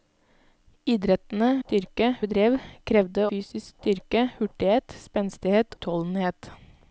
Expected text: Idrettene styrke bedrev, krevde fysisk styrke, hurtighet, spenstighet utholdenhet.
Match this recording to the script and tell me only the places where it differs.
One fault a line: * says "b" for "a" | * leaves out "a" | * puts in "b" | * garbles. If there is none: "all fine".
all fine